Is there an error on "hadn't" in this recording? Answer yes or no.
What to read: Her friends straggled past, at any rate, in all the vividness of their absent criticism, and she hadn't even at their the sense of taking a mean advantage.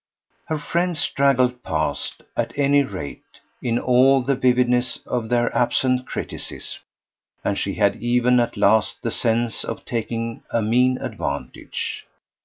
yes